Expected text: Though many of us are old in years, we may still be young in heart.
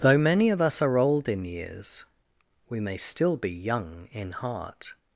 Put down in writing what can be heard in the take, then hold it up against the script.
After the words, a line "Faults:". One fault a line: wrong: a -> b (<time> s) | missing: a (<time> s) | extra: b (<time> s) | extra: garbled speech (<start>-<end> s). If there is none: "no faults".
Though many of us are old in years, we may still be young in heart.
Faults:
no faults